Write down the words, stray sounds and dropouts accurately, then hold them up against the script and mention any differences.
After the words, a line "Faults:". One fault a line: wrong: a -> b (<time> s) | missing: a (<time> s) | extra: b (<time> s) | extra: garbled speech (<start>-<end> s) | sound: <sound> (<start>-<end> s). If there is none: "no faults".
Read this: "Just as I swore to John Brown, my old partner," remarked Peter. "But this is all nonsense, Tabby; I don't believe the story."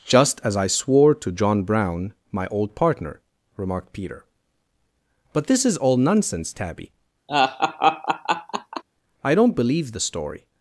"Just as I swore to John Brown, my old partner," remarked Peter. "But this is all nonsense, Tabby; I don't believe the story."
Faults:
sound: laugh (7.3-8.8 s)